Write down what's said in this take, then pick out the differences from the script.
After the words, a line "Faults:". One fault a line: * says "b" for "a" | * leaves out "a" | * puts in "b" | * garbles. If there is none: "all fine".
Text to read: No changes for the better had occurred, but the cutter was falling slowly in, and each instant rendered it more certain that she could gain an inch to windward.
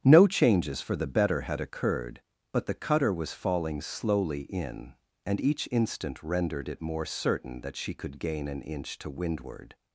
No changes for the better had occurred, but the cutter was falling slowly in, and each instant rendered it more certain that she could gain an inch to windward.
Faults:
all fine